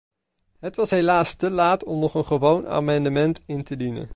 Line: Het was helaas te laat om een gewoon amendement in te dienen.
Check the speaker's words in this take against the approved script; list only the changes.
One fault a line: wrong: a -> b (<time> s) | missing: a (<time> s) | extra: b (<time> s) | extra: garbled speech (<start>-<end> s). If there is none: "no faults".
extra: nog (2.0 s)